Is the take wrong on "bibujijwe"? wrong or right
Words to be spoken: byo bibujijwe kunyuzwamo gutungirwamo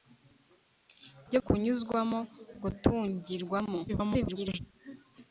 wrong